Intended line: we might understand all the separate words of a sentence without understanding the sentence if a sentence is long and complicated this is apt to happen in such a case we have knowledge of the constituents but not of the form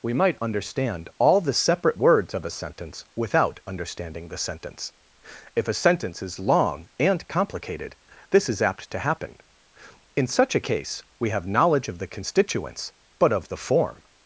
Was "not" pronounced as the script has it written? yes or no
no